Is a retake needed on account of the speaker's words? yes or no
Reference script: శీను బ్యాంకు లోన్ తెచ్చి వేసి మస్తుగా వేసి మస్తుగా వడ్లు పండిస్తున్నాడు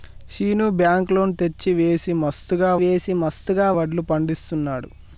no